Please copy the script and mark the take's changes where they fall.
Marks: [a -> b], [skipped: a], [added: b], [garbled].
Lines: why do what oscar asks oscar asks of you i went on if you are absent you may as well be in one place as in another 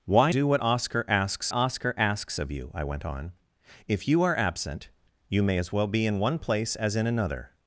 why do what oscar asks oscar asks of you i went on if you are absent you may as well be in one place as in another